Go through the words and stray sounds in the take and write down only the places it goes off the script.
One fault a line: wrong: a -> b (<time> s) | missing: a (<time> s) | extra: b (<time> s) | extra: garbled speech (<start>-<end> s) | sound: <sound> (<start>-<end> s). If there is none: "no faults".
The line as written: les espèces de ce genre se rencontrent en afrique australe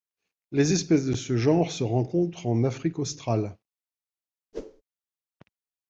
sound: whoosh (4.5-4.8 s)